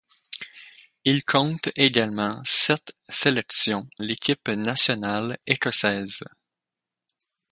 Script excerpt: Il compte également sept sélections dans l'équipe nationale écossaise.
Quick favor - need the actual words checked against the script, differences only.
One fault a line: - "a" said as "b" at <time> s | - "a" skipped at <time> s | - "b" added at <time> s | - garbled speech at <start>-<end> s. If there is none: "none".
- "dans" skipped at 3.9 s